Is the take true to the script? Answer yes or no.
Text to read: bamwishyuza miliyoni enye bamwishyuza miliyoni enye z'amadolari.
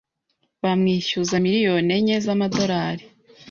no